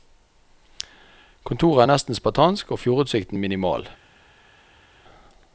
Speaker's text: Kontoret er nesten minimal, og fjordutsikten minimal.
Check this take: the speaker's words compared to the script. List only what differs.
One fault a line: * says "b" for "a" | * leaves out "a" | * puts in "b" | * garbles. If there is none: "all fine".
* says "spartansk" for "minimal"